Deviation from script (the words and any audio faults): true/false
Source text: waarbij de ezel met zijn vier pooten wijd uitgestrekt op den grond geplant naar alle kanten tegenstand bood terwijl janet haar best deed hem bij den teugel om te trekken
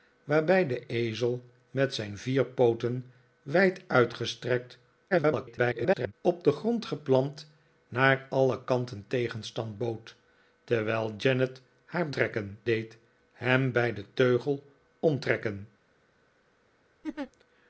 true